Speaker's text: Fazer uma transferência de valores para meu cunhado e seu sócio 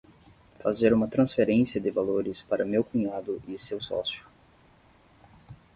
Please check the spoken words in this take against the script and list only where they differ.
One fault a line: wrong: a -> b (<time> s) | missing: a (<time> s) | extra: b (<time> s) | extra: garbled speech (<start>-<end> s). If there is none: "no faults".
no faults